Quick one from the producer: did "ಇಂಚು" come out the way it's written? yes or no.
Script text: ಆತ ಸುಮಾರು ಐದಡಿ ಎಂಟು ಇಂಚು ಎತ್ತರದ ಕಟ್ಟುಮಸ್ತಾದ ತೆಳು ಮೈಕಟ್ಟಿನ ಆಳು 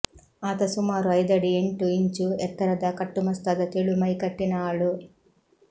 yes